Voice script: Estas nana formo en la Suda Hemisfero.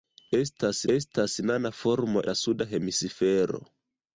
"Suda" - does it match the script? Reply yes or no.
yes